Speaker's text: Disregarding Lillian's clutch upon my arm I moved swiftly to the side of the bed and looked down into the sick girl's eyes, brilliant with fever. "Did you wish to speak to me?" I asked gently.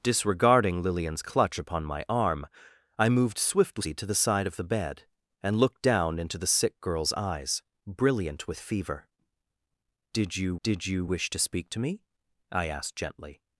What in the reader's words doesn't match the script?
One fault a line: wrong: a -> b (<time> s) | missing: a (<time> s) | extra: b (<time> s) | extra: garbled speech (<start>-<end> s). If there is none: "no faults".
extra: did you (10.6 s)